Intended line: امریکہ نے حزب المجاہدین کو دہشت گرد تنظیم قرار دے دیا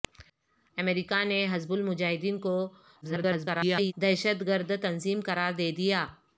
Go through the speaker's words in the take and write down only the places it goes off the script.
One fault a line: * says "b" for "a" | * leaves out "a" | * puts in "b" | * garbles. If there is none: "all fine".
* garbles